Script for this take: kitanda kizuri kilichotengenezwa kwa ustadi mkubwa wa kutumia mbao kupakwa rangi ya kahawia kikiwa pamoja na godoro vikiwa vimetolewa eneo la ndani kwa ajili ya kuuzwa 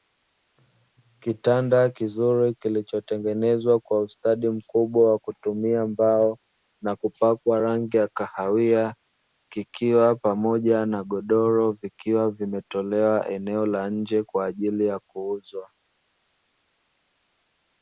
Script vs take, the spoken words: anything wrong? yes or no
yes